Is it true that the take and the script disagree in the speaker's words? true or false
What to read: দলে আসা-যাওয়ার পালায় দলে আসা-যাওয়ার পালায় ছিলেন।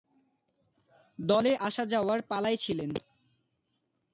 true